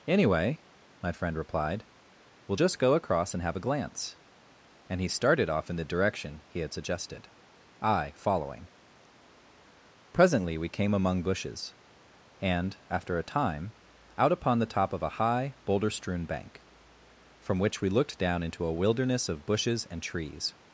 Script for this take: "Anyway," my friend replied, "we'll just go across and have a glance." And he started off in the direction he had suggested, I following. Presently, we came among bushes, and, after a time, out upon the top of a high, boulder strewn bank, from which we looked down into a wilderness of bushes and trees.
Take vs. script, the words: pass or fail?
pass